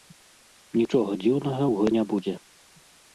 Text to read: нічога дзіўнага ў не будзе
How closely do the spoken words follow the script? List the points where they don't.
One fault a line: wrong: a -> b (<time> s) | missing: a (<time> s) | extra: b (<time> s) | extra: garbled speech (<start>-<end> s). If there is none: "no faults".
no faults